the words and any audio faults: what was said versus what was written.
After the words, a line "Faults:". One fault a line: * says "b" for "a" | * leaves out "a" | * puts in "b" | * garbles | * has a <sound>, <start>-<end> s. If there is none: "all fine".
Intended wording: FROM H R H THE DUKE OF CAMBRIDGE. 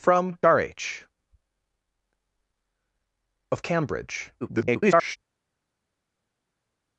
FROM R H OF CAMBRIDGE. [garbled]
Faults:
* leaves out "H"
* leaves out "THE DUKE"
* garbles